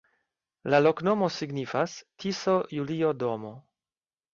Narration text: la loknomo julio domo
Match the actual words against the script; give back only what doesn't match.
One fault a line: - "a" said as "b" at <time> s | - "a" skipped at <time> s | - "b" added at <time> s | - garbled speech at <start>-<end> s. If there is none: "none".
- "signifas tiso" added at 1.4 s